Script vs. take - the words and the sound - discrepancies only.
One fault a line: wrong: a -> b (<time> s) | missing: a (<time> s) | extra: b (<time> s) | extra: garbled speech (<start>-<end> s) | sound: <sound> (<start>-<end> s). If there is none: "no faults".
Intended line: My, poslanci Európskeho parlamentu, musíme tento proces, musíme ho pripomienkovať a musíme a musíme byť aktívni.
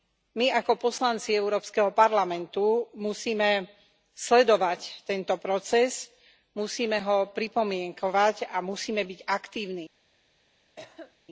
extra: ako (0.5 s)
extra: sledovať (4.2 s)
missing: a musíme (9.0 s)
sound: cough (10.8-11.2 s)